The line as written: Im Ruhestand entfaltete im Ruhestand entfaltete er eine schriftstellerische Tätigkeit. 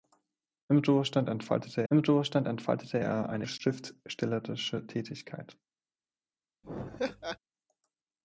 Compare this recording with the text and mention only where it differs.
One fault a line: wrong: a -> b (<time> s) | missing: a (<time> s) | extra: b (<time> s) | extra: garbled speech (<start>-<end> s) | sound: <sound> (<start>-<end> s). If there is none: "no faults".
sound: laugh (6.6-7.4 s)